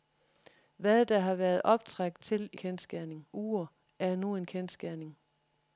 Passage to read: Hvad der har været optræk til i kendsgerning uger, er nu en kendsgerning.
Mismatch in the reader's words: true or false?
false